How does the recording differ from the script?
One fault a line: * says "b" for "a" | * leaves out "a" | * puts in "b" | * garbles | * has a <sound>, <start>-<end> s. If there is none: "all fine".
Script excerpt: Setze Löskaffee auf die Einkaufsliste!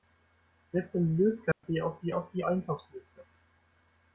* has a dropout, 1.5-1.6 s
* puts in "auf die"